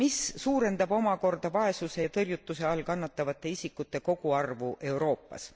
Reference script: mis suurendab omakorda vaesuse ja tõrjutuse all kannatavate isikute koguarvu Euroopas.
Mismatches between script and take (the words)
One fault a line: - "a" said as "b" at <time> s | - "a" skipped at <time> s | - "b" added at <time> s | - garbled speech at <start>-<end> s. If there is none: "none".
none